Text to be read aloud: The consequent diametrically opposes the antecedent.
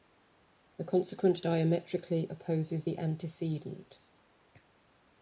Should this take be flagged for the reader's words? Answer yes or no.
no